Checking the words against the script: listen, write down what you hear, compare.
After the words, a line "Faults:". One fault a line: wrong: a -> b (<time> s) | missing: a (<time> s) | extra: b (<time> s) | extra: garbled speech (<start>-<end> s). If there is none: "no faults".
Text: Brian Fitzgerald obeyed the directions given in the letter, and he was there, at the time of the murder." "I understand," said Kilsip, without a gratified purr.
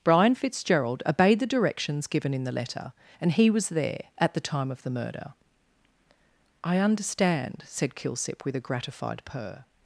Brian Fitzgerald obeyed the directions given in the letter, and he was there, at the time of the murder." "I understand," said Kilsip, with a gratified purr.
Faults:
wrong: without -> with (8.4 s)